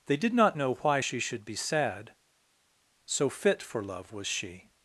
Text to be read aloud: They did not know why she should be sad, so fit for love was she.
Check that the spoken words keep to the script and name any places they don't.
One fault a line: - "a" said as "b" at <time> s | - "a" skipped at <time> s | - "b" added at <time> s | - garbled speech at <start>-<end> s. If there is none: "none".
none